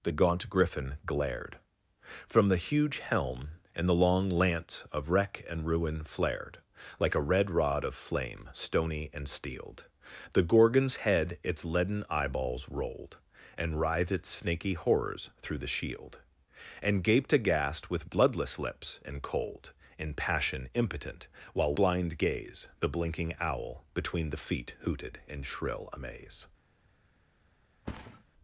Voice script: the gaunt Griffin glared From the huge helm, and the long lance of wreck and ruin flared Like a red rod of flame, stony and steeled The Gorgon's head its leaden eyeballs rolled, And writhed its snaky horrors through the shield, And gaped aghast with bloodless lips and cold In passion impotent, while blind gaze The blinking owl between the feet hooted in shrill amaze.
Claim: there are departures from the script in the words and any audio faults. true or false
true